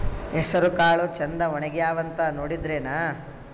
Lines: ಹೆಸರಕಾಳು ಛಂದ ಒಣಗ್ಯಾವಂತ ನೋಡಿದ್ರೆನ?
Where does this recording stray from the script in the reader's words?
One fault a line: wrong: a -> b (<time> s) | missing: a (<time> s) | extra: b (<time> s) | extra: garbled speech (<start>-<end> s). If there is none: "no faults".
no faults